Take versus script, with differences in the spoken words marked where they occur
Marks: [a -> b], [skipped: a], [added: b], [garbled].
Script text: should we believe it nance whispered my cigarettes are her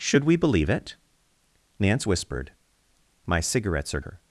should we believe it nance whispered my cigarettes are her